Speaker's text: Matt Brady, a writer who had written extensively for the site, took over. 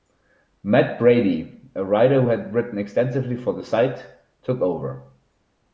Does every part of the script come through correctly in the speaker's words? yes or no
yes